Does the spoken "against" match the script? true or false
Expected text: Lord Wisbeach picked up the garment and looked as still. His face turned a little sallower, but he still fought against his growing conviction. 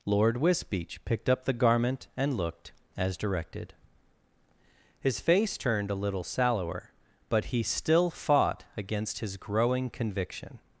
true